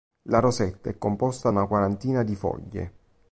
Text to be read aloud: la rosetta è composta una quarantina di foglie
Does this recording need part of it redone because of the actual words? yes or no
no